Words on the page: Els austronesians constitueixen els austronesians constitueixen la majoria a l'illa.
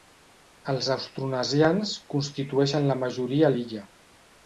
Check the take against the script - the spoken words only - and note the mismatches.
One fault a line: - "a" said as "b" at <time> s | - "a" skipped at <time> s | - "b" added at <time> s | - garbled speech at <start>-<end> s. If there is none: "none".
- "els austronesians constitueixen" skipped at 2.9 s